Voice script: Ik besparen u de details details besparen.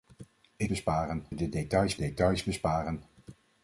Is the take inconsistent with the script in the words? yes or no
no